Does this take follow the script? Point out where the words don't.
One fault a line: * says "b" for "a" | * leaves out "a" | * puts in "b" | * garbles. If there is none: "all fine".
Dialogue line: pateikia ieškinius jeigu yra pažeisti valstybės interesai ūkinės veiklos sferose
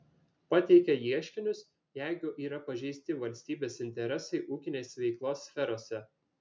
all fine